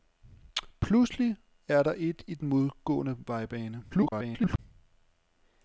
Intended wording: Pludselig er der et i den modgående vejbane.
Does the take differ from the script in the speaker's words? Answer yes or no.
yes